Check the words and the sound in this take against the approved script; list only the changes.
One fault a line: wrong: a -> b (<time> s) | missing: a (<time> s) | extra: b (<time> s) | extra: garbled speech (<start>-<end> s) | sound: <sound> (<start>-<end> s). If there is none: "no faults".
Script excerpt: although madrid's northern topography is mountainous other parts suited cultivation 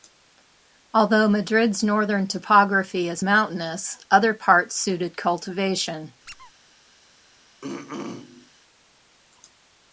sound: squeak (6.3-6.5 s)
sound: throat clearing (7.6-8.5 s)